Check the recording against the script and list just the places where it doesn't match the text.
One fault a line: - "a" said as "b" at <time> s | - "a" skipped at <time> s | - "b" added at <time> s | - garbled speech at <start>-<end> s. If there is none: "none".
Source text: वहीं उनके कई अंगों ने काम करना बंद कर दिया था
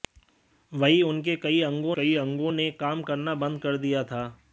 - "कई अंगों" added at 1.9 s